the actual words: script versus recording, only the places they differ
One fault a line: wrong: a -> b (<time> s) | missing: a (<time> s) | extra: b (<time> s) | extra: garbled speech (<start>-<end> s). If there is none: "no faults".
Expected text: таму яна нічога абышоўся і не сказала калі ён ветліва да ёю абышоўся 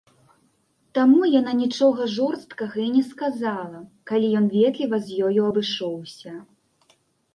wrong: абышоўся -> жорсткага (2.1 s)
wrong: да -> з (5.1 s)